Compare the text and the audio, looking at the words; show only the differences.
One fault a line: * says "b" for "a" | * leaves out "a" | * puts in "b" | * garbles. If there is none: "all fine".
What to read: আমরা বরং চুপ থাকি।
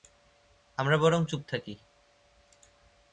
all fine